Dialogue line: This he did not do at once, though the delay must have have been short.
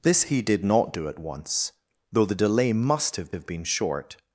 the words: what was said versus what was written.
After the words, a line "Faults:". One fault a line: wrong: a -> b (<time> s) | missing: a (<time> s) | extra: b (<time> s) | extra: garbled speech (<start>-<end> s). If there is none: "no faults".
This he did not do at once, though the delay must have have been short.
Faults:
no faults